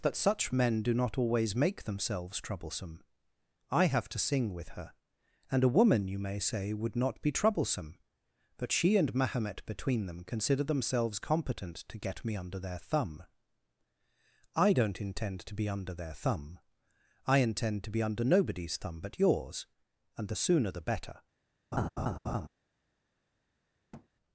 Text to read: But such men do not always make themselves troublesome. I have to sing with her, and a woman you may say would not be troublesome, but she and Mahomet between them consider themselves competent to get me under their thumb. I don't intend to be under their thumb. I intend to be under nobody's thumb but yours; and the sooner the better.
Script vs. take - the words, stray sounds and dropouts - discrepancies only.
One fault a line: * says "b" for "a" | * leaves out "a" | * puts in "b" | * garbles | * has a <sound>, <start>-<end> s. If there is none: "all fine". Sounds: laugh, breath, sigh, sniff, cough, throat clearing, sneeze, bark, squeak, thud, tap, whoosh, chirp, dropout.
* says "That" for "But"
* has a laugh, 21.7-22.5 s
* has a thud, 23.9-24.1 s